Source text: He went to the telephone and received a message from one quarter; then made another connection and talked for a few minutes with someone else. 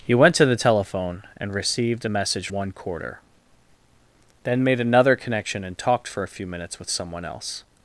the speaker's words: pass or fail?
fail